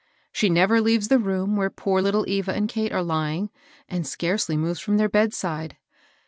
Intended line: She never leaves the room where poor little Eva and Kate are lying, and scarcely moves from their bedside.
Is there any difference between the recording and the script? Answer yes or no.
no